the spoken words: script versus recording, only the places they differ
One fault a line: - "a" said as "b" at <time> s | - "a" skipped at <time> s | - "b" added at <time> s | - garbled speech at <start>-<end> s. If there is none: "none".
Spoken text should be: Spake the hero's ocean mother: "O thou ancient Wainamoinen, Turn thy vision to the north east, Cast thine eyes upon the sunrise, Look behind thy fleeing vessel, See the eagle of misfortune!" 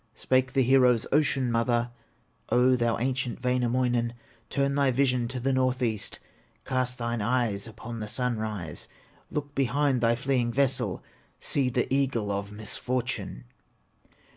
none